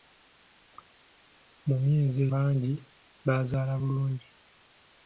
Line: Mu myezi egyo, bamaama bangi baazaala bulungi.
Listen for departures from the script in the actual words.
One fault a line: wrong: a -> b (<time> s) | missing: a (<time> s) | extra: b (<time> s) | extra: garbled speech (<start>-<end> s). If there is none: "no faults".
missing: egyo bamaama (2.2 s)